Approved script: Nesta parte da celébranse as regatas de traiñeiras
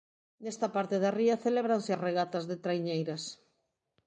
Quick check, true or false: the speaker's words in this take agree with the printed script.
false